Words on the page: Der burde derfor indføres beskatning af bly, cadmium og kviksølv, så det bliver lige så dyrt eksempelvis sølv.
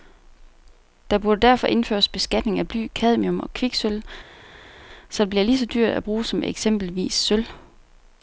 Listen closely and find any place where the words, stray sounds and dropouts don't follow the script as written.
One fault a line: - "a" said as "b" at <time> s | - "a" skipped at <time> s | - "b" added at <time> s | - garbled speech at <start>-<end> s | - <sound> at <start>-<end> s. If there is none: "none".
- "at bruge som" added at 5.9 s